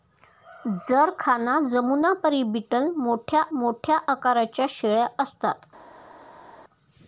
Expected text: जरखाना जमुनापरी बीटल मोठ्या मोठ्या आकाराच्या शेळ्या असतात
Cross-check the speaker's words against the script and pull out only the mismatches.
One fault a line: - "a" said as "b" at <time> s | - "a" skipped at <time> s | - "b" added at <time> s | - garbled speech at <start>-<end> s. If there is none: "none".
none